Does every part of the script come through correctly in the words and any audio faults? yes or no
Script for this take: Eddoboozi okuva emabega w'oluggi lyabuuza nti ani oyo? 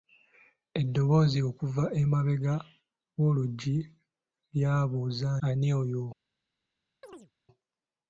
no